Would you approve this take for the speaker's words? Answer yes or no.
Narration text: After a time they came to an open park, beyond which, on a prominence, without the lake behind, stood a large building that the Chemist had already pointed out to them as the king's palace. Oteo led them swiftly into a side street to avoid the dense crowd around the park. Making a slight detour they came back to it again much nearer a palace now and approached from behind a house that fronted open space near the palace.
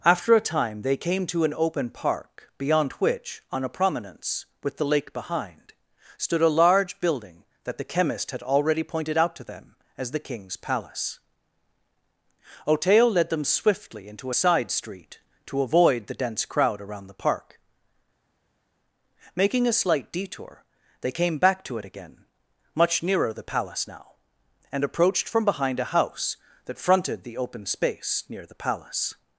no